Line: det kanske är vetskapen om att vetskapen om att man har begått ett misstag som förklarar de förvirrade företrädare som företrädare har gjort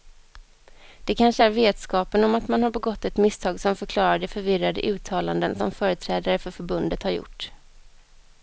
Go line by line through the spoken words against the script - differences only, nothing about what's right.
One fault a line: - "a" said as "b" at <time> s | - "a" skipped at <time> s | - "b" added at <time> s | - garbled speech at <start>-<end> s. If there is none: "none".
- "vetskapen om att" skipped at 2.5 s
- "företrädare" said as "uttalanden" at 4.8 s
- "för förbundet" added at 6.4 s